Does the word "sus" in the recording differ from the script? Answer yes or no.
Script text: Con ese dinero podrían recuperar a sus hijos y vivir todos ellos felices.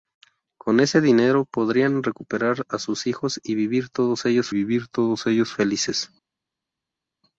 no